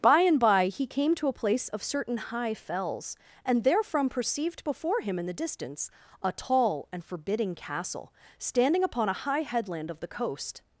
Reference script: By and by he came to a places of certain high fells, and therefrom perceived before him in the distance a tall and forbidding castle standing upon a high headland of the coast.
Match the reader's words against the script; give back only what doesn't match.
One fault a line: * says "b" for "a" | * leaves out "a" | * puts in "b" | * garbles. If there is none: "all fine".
* says "place" for "places"